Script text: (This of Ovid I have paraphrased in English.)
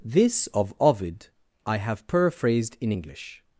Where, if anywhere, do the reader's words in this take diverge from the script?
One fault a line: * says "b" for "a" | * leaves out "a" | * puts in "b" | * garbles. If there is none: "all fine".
all fine